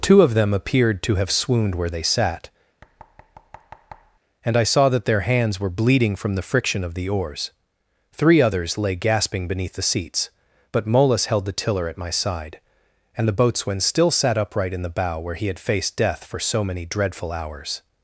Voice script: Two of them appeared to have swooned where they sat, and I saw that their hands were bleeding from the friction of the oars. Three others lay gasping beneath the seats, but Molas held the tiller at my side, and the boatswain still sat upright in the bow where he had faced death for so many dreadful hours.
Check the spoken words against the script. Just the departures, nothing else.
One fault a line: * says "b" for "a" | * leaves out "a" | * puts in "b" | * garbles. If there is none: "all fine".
all fine